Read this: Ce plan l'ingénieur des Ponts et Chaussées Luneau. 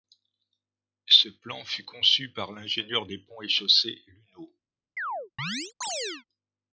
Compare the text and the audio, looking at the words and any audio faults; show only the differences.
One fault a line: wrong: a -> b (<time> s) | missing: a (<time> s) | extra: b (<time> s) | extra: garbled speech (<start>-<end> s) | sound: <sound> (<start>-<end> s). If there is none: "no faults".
extra: fut conçu par (1.6 s)
sound: chirp (5.0-6.2 s)